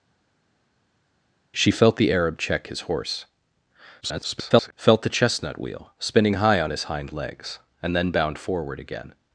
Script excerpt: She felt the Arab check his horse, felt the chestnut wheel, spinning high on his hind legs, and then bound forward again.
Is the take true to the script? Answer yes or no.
no